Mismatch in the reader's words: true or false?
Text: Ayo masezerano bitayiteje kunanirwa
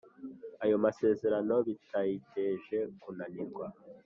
false